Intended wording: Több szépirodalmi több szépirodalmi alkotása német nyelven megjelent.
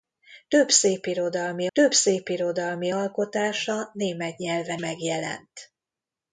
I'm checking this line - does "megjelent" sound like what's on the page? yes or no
yes